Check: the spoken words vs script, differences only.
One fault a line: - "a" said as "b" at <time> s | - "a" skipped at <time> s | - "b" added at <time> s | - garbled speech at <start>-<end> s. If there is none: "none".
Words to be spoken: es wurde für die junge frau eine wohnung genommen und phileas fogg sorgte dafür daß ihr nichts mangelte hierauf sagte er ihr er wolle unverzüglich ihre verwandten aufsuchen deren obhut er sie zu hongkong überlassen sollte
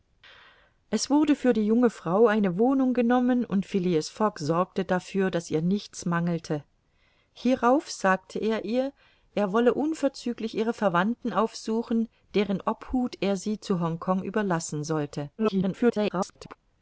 - garbled speech at 15.4-16.6 s